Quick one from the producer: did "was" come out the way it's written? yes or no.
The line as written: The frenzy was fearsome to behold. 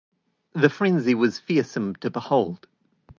yes